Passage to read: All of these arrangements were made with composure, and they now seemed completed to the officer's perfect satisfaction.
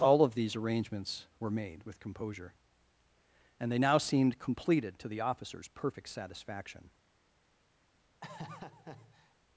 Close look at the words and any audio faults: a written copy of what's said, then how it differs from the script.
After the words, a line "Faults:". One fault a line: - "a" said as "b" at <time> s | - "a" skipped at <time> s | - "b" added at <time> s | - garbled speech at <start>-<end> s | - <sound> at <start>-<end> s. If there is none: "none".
All of these arrangements were made with composure, and they now seemed completed to the officer's perfect satisfaction.
Faults:
- laugh at 8.2-9.3 s